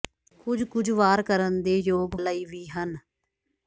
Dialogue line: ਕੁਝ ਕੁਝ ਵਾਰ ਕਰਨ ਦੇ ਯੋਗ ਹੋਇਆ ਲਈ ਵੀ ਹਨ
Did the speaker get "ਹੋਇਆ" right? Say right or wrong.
wrong